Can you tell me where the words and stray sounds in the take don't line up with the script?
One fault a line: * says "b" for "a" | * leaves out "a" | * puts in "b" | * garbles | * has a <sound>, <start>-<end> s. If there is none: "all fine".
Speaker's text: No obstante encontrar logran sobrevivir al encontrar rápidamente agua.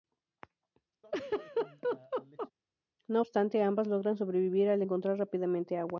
* has a laugh, 1.0-2.5 s
* says "ambas" for "encontrar"